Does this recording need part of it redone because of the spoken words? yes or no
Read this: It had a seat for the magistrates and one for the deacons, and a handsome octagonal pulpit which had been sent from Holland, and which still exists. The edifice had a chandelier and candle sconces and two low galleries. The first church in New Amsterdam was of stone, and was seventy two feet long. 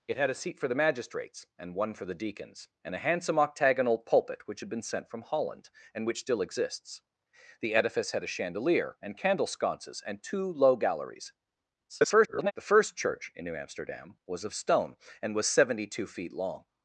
yes